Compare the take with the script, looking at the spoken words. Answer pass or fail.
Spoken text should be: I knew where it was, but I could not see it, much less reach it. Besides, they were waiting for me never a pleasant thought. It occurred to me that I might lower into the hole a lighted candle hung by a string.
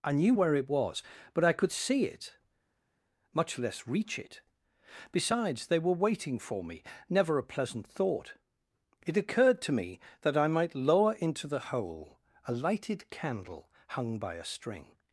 fail